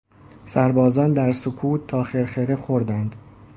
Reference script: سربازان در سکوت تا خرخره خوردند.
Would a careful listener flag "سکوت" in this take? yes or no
no